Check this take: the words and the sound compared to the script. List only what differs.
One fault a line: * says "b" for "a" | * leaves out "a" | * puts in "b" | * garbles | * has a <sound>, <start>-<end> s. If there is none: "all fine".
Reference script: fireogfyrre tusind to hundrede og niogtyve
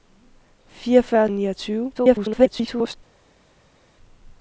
* leaves out "tusind to hundrede"
* garbles